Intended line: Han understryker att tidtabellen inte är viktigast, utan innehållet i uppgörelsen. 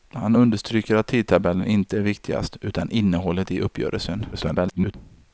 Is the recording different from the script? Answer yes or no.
yes